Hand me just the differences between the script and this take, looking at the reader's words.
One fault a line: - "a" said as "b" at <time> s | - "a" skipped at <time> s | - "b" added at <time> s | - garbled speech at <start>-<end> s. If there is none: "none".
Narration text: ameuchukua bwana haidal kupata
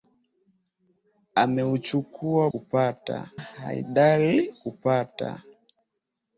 - "bwana" said as "kupata" at 2.5 s